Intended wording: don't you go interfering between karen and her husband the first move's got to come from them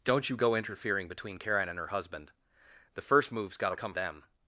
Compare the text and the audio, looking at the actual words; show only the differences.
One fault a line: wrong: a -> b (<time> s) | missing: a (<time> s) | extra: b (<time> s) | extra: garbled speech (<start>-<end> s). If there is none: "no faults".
missing: from (3.9 s)